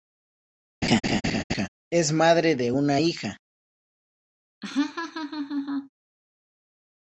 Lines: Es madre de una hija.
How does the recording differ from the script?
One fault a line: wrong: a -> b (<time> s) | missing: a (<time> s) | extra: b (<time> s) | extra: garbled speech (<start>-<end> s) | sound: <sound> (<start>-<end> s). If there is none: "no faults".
sound: laugh (0.8-1.7 s)
sound: laugh (4.6-5.9 s)